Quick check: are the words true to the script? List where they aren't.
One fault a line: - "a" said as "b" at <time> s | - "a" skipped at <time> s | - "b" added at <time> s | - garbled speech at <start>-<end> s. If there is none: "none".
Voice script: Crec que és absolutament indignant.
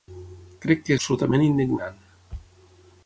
- "és" skipped at 0.9 s